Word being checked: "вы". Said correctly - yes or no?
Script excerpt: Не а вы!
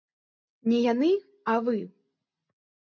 yes